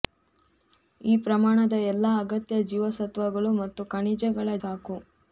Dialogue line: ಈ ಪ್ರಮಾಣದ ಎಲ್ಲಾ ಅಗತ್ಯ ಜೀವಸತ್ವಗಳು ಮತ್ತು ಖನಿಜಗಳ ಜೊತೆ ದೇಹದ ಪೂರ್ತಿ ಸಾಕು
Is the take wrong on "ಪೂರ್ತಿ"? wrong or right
wrong